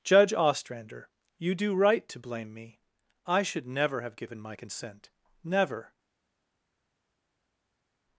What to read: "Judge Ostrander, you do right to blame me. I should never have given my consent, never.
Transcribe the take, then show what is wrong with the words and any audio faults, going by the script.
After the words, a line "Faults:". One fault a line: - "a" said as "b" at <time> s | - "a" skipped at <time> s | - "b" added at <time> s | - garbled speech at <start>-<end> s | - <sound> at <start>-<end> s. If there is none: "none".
"Judge Ostrander, you do right to blame me. I should never have given my consent, never.
Faults:
none